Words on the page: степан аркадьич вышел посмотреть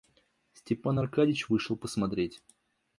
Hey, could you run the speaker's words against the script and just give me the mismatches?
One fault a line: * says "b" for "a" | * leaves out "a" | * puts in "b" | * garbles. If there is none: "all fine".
all fine